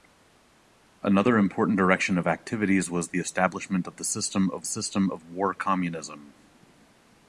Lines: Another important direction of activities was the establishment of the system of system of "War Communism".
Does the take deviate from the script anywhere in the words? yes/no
no